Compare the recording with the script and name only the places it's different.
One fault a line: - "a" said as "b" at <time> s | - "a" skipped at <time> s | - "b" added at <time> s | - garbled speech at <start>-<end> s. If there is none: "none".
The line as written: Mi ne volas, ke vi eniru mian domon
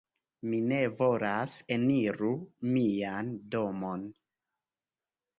- "ke vi" skipped at 1.6 s